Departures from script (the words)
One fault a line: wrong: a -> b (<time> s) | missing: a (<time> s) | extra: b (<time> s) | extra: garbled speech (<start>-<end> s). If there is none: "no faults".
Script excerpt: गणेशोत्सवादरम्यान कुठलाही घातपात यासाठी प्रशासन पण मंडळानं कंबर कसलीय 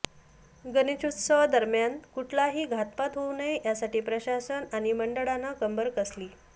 extra: होऊ नये (3.1 s)
wrong: पण -> आणि (4.7 s)